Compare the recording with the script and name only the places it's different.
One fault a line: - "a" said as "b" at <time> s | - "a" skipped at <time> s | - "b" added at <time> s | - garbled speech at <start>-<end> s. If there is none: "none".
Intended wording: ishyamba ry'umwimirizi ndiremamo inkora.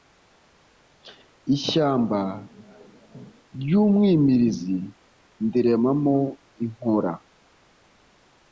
none